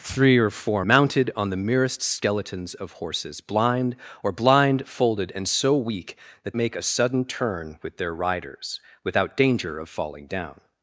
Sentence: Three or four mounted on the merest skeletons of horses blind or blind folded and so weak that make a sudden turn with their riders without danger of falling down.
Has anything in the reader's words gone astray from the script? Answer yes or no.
no